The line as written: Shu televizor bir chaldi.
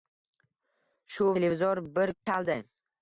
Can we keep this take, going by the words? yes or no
yes